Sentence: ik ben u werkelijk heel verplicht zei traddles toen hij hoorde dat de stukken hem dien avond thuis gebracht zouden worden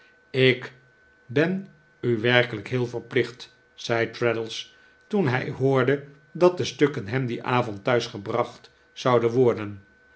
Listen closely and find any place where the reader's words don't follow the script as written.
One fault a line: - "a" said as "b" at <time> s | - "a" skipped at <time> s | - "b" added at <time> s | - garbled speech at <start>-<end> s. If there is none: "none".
none